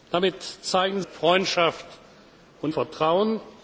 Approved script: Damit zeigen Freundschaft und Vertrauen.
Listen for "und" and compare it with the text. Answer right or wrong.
right